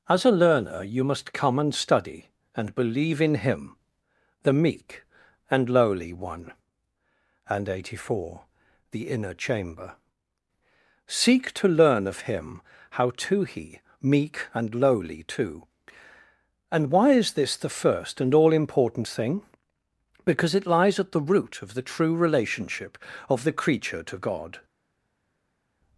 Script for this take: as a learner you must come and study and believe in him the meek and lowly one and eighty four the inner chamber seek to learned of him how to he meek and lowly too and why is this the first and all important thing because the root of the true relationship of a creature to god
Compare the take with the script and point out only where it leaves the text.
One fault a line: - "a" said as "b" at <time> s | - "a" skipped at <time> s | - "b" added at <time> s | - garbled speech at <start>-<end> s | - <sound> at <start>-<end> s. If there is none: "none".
- "learned" said as "learn" at 11.7 s
- "it lies at" added at 20.5 s
- "a" said as "the" at 23.4 s